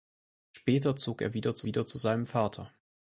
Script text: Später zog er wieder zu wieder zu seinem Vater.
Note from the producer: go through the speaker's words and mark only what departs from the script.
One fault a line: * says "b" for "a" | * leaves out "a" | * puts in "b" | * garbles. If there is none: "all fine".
all fine